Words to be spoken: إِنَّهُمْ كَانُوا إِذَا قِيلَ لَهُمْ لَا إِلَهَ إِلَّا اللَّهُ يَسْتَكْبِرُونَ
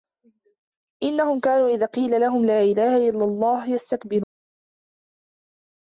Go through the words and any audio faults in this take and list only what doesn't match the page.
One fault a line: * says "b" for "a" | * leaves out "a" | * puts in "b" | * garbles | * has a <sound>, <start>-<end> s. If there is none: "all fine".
all fine